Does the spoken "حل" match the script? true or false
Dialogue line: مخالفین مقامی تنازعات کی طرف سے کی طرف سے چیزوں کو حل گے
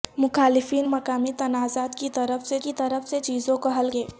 true